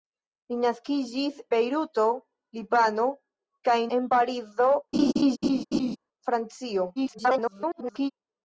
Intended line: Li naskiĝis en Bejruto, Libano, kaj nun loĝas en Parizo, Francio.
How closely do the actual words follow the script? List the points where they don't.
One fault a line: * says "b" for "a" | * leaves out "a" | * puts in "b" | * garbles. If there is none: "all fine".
* leaves out "en"
* leaves out "nun loĝas"
* garbles